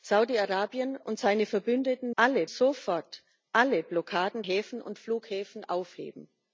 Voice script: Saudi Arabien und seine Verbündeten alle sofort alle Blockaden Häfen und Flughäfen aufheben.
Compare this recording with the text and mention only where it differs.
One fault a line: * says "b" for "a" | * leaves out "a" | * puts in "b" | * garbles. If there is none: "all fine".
all fine